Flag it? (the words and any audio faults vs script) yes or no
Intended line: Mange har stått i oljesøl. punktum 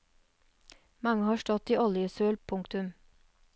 no